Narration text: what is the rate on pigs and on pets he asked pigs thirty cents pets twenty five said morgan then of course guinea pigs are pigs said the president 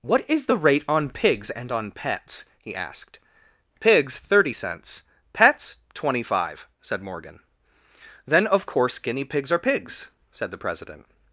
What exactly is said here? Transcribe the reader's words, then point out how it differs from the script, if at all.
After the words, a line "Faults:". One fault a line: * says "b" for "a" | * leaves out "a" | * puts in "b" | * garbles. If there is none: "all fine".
what is the rate on pigs and on pets he asked pigs thirty cents pets twenty five said morgan then of course guinea pigs are pigs said the president
Faults:
all fine